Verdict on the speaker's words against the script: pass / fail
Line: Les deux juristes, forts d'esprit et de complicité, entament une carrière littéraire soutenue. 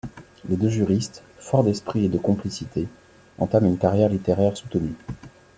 pass